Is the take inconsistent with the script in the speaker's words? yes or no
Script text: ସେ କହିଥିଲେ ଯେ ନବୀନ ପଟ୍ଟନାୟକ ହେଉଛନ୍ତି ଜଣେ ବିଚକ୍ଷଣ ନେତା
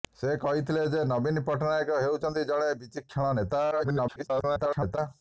yes